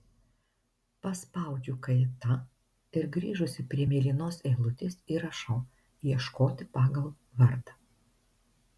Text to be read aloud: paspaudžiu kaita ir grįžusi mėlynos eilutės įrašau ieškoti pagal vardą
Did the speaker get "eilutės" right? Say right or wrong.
right